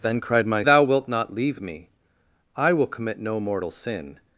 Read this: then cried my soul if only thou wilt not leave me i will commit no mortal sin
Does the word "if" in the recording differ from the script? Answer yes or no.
yes